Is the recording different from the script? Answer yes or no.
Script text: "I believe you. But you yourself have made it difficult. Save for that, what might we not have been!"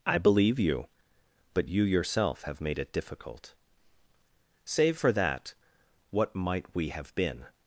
yes